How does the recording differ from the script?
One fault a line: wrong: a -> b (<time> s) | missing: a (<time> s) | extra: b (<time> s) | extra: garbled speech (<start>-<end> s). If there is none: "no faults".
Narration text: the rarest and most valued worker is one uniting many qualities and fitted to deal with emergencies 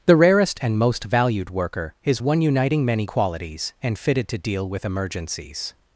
no faults